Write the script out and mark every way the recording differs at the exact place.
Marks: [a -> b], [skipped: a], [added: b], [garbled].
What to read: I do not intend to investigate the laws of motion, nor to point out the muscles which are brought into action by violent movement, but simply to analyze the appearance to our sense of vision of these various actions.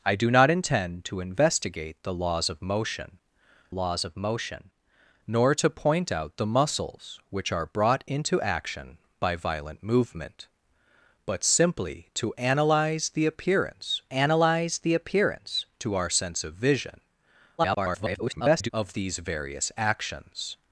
I do not intend to investigate the laws of motion, [added: laws of motion] nor to point out the muscles which are brought into action by violent movement, but simply to analyze the appearance [added: analyze the appearance] to our sense of vision [garbled] of these various actions.